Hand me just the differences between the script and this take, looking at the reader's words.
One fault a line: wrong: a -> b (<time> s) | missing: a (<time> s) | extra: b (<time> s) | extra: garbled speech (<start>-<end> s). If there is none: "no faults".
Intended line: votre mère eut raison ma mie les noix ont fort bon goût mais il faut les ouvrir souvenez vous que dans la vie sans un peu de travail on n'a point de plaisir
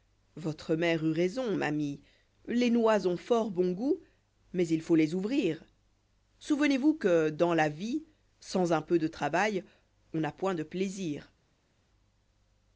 no faults